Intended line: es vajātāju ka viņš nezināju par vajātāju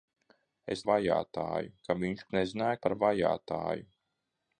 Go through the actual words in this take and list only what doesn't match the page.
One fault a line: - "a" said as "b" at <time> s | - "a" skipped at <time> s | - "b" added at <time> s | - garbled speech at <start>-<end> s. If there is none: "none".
none